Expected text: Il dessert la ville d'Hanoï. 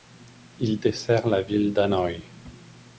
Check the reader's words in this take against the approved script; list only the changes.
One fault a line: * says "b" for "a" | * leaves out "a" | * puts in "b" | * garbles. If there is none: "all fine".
all fine